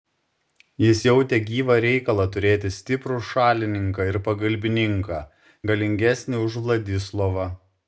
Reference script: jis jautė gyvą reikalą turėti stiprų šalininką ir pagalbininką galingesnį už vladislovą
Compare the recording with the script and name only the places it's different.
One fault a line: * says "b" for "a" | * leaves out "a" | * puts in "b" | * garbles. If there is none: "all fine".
all fine